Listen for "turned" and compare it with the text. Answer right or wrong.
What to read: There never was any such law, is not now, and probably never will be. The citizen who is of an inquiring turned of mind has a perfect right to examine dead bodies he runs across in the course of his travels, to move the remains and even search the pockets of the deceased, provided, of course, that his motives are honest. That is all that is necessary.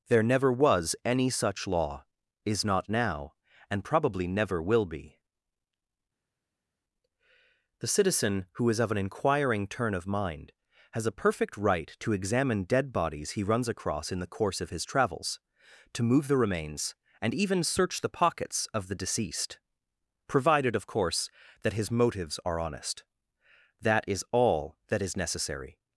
wrong